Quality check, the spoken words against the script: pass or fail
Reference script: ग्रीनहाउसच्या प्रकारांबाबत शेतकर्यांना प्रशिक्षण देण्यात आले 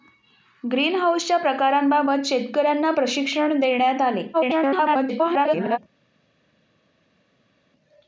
fail